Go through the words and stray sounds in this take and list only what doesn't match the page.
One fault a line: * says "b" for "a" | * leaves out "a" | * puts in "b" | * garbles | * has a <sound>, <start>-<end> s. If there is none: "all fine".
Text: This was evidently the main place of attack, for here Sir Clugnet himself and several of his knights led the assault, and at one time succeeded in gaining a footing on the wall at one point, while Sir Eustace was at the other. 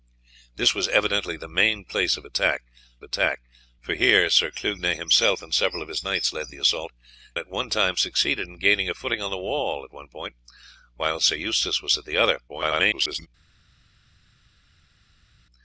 * puts in "attack"
* leaves out "and"
* garbles